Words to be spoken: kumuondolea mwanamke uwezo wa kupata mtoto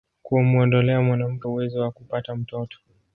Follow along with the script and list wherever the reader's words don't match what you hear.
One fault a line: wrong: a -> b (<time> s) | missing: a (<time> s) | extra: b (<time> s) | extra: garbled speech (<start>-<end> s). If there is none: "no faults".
no faults